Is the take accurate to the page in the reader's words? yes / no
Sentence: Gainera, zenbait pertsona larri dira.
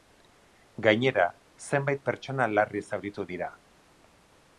no